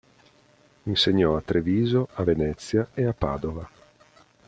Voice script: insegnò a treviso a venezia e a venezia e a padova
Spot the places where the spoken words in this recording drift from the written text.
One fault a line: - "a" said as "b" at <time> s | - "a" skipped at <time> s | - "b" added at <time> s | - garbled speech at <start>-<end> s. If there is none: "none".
- "venezia e a" skipped at 3.1 s